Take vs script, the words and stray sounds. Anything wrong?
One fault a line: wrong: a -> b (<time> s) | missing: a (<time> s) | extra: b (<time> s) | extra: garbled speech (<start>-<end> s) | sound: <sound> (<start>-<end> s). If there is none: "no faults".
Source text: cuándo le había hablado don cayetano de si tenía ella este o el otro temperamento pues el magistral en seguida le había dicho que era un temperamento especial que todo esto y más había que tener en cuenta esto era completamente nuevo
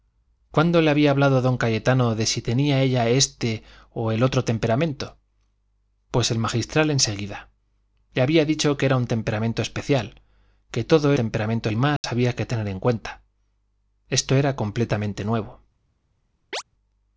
wrong: esto -> temperamento (11.1 s)
sound: dropout (12.0-12.0 s)
sound: chirp (16.5-16.6 s)